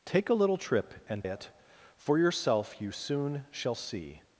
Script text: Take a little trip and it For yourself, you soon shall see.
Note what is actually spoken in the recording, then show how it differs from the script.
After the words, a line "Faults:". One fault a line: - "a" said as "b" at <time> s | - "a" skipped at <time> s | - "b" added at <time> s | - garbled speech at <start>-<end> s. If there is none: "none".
Take a little trip and it For yourself, you soon shall see.
Faults:
none